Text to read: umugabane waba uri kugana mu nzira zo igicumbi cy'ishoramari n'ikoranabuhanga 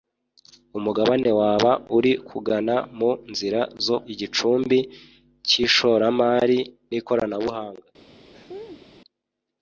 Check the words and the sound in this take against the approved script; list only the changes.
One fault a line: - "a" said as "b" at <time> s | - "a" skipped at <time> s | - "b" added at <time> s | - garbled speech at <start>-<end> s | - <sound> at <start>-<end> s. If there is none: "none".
- laugh at 8.3-8.9 s